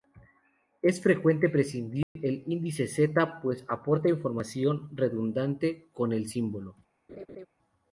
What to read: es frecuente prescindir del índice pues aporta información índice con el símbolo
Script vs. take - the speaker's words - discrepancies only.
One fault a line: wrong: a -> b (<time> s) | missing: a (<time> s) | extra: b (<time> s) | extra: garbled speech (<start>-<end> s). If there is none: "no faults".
extra: z (2.9 s)
wrong: índice -> redundante (4.9 s)